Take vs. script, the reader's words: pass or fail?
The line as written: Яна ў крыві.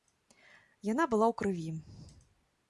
fail